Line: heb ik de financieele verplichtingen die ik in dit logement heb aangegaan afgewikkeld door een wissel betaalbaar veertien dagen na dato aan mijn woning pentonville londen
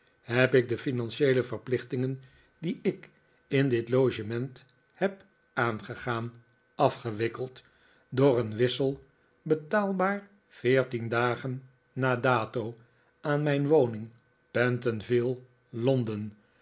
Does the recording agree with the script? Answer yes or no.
yes